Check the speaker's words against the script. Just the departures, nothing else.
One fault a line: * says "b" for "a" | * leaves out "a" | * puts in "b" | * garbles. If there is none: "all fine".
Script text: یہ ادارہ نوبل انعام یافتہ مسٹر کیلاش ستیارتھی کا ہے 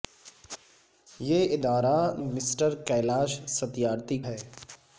* leaves out "نوبل انعام یافتہ"
* leaves out "کا"